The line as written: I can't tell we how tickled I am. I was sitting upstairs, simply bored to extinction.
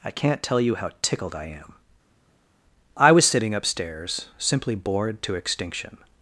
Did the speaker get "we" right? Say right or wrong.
wrong